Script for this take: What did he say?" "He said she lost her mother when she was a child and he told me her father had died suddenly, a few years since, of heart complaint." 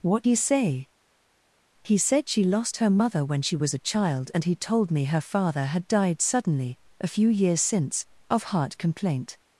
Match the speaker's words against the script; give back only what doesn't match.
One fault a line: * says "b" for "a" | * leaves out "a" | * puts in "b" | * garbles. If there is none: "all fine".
* leaves out "did"